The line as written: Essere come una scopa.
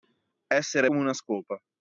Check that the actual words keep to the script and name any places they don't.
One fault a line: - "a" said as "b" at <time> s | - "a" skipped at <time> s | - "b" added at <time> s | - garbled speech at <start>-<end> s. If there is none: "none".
none